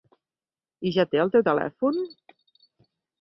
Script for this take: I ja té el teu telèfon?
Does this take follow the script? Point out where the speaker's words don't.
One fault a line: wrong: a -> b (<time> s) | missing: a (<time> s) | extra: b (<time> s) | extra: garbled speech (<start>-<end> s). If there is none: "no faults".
no faults